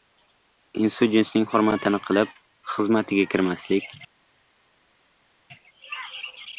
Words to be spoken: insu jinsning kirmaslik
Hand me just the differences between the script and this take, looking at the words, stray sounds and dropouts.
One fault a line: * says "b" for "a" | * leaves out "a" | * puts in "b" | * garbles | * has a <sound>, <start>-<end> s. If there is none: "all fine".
* puts in "hurmatini qilib xizmatiga"